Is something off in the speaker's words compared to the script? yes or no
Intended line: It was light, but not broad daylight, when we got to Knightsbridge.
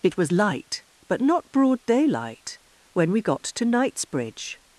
no